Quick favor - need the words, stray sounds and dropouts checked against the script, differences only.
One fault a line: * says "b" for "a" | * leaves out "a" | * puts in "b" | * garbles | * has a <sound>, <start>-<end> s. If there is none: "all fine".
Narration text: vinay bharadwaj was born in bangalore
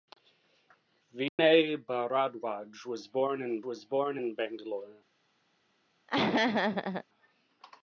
* has a dropout, 1.3-1.4 s
* puts in "was born in"
* has a laugh, 6.1-7.0 s